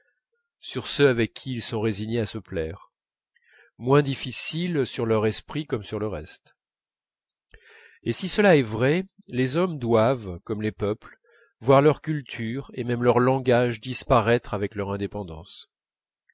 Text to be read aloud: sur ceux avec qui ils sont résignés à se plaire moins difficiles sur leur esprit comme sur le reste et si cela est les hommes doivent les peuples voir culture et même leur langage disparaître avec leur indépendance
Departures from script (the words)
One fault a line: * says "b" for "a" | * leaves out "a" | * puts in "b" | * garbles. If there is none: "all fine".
* puts in "vrai"
* puts in "comme"
* puts in "leur"